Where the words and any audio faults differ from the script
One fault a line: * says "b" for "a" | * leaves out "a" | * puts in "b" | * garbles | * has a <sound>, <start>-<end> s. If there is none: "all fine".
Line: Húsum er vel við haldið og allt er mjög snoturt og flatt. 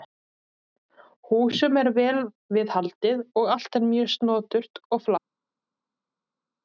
all fine